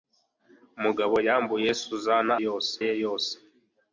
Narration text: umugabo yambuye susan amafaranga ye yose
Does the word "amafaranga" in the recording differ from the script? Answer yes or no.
yes